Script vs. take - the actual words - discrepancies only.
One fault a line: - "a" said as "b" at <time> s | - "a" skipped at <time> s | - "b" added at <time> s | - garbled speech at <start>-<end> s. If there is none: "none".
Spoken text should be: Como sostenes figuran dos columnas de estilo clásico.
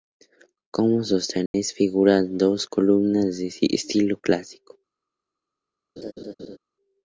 none